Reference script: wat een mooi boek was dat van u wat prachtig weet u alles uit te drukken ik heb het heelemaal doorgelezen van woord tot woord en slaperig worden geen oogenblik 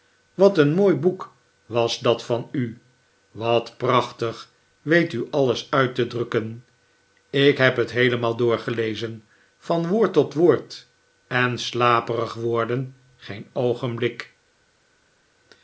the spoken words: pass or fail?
pass